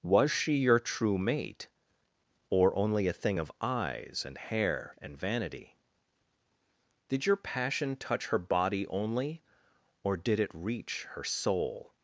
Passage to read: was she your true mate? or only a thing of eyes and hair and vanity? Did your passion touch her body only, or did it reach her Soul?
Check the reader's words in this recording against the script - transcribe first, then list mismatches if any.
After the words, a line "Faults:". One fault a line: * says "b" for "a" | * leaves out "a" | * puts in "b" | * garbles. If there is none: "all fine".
was she your true mate? or only a thing of eyes and hair and vanity? Did your passion touch her body only, or did it reach her Soul?
Faults:
all fine